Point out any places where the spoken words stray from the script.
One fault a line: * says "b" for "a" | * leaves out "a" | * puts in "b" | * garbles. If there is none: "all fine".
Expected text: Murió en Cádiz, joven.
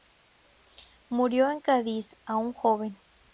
* puts in "aún"